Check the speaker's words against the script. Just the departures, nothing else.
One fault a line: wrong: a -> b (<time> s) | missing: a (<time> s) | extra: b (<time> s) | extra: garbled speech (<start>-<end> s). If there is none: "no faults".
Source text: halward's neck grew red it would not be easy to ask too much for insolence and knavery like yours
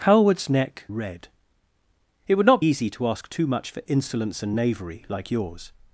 missing: grew (0.8 s)
missing: be (2.6 s)